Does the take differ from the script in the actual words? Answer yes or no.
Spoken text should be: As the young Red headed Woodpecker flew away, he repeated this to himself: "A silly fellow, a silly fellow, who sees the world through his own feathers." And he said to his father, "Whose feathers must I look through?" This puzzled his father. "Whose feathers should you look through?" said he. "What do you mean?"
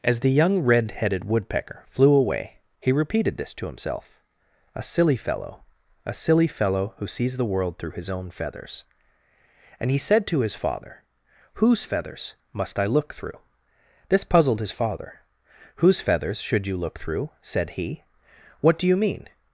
no